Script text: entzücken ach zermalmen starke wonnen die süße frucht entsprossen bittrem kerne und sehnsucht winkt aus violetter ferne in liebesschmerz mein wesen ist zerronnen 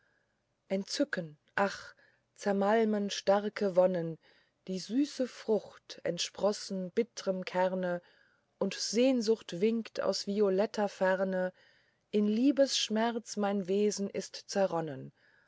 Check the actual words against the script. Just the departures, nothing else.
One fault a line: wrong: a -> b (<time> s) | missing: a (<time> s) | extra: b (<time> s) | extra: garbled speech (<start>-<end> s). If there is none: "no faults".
no faults